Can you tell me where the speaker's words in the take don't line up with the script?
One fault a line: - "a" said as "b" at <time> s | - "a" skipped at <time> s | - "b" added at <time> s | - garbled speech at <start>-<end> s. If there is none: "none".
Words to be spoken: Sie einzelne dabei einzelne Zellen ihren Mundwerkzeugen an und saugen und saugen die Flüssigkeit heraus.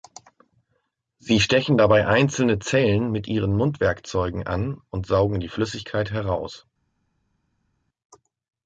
- "einzelne" said as "stechen" at 1.4 s
- "mit" added at 3.1 s
- "und saugen" skipped at 5.4 s